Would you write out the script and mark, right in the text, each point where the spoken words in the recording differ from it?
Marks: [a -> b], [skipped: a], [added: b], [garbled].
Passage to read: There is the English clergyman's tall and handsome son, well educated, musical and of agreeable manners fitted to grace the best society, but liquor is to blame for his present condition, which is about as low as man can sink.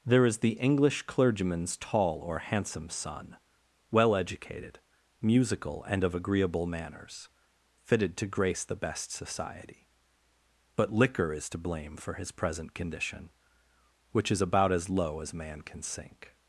There is the English clergyman's tall [and -> or] handsome son, well educated, musical and of agreeable manners fitted to grace the best society, but liquor is to blame for his present condition, which is about as low as man can sink.